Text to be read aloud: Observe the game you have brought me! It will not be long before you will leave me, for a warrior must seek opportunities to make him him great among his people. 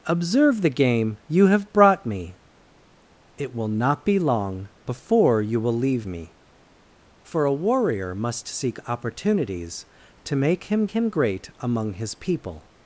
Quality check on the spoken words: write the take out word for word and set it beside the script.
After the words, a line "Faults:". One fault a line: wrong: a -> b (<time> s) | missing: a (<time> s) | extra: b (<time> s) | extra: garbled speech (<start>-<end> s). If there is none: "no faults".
Observe the game you have brought me! It will not be long before you will leave me, for a warrior must seek opportunities to make him him great among his people.
Faults:
no faults